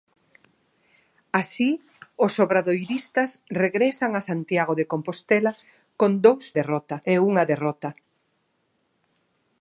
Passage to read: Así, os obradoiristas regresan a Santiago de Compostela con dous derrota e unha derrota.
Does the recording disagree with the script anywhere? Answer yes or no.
no